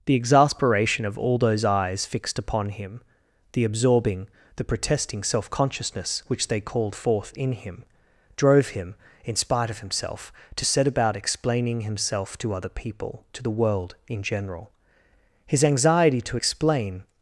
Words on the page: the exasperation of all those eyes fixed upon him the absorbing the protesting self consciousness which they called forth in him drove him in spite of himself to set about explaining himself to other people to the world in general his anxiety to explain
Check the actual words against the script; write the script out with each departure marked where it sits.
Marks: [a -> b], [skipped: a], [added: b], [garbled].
the exasperation of all those eyes fixed upon him the absorbing the protesting self consciousness which they called forth in him drove him in spite of himself to set about explaining himself to other people to the world in general his anxiety to explain